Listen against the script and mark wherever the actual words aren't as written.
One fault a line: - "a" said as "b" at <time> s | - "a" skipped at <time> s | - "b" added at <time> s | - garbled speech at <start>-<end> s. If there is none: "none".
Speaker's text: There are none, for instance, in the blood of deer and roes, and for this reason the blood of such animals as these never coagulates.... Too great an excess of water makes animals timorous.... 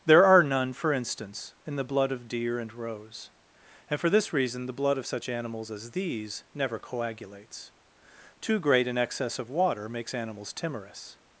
none